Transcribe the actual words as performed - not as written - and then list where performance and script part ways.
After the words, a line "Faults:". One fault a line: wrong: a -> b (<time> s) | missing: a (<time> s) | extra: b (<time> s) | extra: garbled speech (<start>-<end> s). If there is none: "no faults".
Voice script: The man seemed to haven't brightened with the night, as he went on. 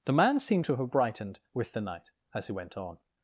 The man seemed to have brightened with the night, as he went on.
Faults:
wrong: haven't -> have (0.8 s)